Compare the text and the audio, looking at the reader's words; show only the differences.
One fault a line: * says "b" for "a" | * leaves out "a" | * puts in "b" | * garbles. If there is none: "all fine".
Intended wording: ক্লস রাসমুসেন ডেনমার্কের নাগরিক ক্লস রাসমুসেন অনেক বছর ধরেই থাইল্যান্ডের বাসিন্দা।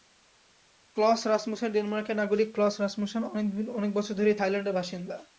all fine